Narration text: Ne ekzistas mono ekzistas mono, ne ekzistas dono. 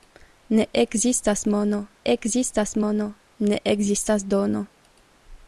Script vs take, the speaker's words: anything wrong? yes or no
no